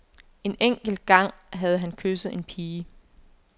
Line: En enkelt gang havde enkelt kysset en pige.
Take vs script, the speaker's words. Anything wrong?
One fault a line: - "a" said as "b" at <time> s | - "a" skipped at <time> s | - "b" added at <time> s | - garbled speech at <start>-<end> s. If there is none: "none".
- "enkelt" said as "han" at 1.8 s